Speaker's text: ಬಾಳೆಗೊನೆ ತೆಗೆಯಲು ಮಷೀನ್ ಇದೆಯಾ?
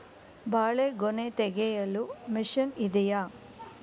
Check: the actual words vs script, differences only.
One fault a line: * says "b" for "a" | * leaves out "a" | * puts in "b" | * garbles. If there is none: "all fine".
all fine